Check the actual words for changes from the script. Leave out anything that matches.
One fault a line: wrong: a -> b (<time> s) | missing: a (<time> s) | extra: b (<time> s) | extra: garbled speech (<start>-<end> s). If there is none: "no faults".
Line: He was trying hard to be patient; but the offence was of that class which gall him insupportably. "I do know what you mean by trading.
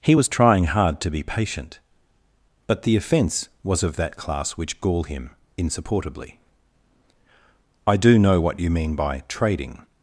no faults